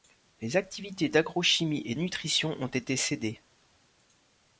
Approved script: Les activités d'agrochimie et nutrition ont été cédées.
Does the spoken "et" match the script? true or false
true